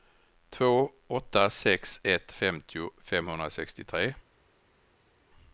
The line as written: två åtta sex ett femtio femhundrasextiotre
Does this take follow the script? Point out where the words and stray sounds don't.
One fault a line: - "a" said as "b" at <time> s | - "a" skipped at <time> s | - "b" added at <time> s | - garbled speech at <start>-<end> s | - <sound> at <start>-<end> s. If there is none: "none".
none